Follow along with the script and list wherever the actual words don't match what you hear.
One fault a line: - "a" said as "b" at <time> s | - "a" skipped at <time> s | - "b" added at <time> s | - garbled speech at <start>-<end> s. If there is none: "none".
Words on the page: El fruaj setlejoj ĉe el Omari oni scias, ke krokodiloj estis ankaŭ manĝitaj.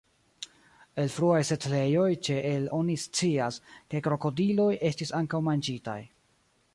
- "Omari" skipped at 2.7 s